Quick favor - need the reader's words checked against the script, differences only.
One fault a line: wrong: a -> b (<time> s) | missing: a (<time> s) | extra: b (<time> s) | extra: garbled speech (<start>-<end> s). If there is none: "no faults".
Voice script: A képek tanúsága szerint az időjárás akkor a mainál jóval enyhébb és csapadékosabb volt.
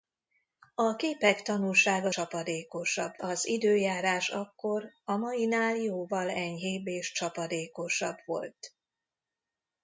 wrong: szerint -> csapadékosabb (2.1 s)